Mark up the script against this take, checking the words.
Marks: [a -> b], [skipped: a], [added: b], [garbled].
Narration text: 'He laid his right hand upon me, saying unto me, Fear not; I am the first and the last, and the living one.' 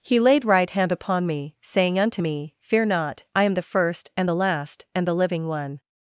'He laid [skipped: his] right hand upon me, saying unto me, Fear not; I am the first and the last, and the living one.'